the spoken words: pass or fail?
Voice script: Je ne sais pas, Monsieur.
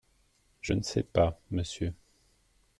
pass